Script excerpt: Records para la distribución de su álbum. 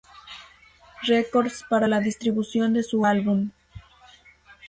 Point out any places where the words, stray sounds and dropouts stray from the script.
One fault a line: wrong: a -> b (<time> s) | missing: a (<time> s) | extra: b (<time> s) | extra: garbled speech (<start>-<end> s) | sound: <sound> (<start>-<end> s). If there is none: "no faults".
no faults